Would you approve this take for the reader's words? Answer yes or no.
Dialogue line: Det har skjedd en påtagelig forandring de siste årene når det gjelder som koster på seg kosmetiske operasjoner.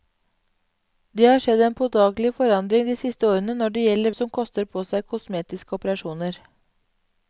yes